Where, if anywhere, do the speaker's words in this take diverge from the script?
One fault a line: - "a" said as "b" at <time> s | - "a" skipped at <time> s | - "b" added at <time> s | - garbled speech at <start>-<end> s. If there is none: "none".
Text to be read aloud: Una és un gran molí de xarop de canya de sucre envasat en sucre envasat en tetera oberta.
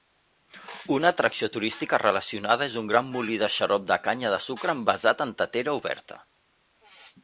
- "atracció turística relacionada" added at 1.1 s
- "sucre envasat en" skipped at 5.4 s